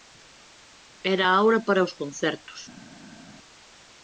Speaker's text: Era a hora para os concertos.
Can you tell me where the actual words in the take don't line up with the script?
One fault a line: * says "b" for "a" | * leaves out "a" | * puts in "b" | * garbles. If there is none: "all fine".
all fine